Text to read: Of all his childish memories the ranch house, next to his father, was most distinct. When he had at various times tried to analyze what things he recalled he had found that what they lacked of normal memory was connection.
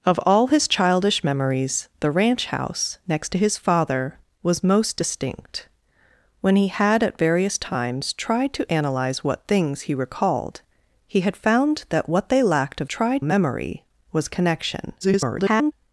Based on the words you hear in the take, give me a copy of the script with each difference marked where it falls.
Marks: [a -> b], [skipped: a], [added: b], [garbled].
Of all his childish memories the ranch house, next to his father, was most distinct. When he had at various times tried to analyze what things he recalled he had found that what they lacked of [normal -> tried] memory was connection. [garbled]